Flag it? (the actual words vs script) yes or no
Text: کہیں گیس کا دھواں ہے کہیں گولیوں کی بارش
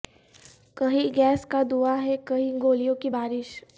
no